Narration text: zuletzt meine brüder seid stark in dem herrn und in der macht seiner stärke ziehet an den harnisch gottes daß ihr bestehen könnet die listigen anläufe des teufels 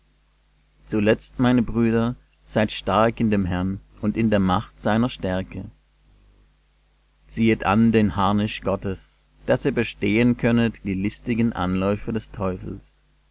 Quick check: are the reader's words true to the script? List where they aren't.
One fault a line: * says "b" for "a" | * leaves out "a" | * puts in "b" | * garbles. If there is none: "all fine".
all fine